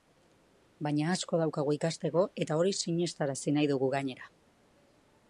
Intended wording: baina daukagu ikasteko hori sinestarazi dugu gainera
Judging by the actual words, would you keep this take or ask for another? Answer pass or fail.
fail